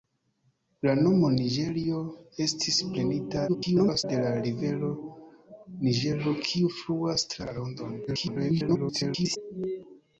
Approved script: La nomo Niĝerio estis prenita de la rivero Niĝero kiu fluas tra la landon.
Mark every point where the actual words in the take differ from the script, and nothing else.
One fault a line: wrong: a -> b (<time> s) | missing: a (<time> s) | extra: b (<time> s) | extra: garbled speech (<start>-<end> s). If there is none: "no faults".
extra: garbled speech (3.5-4.0 s)
extra: garbled speech (8.1-9.4 s)